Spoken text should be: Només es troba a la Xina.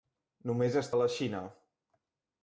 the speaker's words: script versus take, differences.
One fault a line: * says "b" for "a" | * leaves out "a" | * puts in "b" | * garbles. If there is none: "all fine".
* leaves out "troba"